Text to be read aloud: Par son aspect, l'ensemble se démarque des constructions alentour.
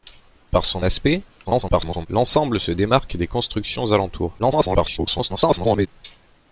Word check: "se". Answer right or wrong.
right